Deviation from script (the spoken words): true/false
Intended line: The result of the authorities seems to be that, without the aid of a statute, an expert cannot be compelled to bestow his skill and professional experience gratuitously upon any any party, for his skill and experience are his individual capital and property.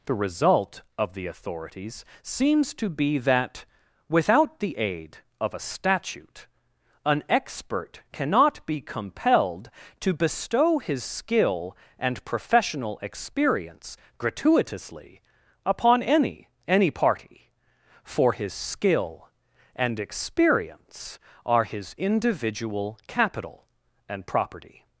false